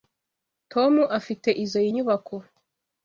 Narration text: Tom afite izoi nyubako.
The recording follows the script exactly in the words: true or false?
true